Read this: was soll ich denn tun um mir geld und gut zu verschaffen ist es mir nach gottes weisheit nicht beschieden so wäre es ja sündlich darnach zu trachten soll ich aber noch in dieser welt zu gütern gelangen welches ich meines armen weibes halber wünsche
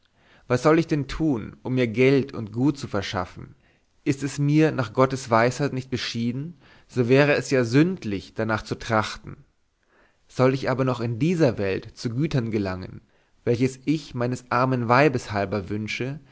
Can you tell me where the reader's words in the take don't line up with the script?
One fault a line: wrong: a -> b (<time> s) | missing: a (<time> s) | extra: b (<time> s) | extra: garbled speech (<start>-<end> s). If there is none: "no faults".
no faults